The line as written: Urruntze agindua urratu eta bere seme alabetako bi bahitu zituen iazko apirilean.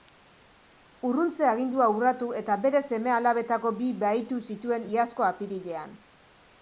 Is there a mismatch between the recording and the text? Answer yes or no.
no